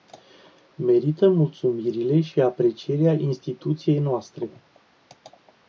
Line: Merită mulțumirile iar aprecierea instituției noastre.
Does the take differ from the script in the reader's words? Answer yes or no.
yes